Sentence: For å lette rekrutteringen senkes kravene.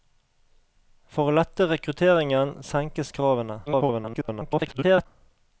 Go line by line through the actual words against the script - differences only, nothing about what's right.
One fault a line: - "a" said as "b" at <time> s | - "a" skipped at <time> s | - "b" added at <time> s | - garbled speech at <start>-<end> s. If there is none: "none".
- garbled speech at 3.7-5.1 s